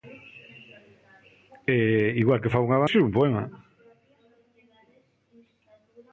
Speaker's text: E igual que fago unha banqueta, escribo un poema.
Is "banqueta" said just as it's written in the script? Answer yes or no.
no